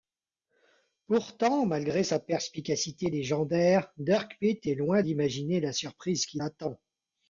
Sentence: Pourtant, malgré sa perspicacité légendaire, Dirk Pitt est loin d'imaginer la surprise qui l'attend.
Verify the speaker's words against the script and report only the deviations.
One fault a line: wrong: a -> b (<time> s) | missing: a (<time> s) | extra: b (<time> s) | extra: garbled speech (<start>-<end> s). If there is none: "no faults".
no faults